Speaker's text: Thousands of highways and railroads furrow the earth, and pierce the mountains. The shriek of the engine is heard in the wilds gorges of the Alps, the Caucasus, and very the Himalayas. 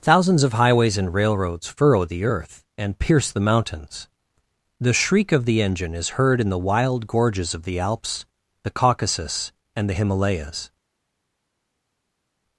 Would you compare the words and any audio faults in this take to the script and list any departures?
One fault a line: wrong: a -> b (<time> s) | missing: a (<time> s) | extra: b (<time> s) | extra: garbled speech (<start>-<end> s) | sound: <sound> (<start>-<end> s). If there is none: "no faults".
wrong: wilds -> wild (6.6 s)
missing: very (9.9 s)